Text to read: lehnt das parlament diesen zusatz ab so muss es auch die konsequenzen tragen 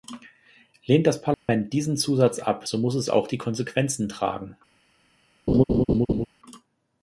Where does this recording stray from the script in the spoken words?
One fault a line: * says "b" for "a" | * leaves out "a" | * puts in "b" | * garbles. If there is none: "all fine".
all fine